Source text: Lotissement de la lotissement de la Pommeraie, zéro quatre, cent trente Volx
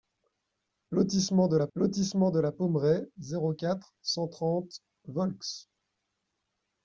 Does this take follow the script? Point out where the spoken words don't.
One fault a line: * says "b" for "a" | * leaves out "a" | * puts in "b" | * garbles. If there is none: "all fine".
all fine